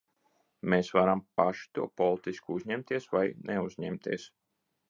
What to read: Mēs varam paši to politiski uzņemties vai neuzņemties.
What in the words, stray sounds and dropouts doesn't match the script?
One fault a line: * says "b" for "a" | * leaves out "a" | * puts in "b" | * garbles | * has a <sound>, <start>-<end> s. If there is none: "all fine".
all fine